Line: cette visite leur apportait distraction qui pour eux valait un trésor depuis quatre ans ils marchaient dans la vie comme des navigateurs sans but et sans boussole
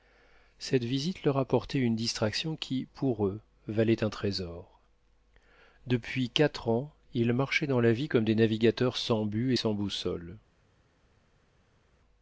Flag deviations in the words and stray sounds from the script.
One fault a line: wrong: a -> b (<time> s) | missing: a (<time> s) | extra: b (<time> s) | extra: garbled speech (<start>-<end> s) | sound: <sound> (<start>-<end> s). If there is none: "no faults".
extra: une (1.8 s)